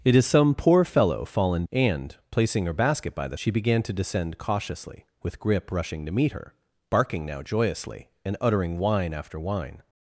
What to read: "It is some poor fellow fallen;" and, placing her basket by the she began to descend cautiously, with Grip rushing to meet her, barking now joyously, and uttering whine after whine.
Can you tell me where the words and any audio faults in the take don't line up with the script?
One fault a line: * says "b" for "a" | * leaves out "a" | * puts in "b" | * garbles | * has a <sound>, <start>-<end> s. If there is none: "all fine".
all fine